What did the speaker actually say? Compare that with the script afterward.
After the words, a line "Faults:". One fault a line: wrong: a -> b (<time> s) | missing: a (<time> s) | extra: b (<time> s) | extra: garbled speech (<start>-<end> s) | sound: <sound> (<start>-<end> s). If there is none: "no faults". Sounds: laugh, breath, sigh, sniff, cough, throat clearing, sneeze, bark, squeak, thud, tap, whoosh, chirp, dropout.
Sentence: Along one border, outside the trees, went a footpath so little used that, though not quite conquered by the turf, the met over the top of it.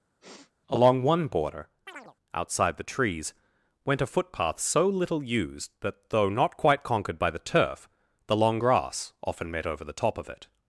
Along one border, outside the trees, went a footpath so little used that, though not quite conquered by the turf, the long grass often met over the top of it.
Faults:
sound: sniff (0.2-0.5 s)
sound: chirp (1.9-2.1 s)
extra: long grass often (8.4 s)